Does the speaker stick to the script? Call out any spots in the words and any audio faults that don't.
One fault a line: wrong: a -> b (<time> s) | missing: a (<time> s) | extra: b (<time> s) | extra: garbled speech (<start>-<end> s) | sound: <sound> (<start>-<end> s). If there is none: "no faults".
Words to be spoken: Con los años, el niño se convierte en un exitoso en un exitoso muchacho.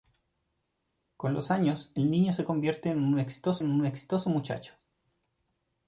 no faults